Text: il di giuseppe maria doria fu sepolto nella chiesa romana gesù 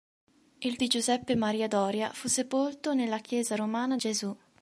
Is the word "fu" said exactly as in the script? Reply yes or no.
yes